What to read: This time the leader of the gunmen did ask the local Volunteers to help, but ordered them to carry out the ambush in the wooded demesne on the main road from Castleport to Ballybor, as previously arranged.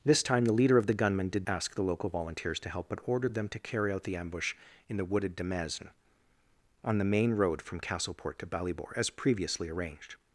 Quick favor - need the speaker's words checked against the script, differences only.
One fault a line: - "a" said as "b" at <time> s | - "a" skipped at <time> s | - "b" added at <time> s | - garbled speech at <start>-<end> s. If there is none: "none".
none